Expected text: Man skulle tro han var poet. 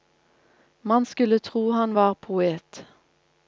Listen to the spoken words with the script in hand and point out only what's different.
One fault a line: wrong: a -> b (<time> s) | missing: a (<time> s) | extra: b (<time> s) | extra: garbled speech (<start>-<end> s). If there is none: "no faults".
no faults